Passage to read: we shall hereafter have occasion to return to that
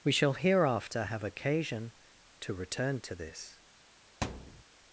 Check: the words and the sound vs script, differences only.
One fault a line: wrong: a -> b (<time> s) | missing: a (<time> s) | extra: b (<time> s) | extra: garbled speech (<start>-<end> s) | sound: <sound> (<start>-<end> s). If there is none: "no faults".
wrong: that -> this (3.2 s)
sound: thud (4.2-4.6 s)